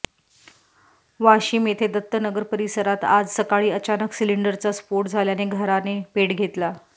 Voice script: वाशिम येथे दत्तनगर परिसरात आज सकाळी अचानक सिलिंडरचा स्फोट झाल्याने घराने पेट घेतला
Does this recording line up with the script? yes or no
yes